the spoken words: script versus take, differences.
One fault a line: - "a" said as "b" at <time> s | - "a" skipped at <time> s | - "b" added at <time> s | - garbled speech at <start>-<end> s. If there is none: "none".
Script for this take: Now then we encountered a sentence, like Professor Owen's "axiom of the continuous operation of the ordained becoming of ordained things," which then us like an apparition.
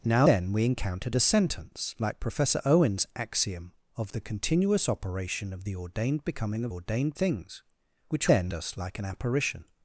none